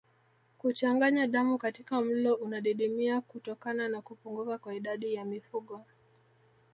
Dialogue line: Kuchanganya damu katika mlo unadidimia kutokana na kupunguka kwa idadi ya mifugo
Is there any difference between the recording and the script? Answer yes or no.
no